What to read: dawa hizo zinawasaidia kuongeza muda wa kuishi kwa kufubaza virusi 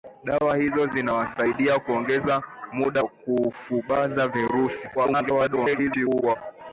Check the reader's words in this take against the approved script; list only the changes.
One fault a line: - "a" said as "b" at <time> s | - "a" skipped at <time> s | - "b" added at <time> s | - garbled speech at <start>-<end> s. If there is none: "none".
- "wa kuishi kwa" skipped at 3.0 s
- garbled speech at 4.9-6.4 s